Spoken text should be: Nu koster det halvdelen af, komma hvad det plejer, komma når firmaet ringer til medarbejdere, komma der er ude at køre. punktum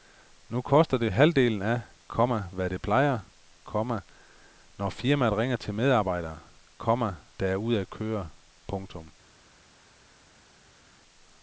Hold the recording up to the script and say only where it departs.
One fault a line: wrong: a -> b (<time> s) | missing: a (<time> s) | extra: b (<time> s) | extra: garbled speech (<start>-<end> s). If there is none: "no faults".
no faults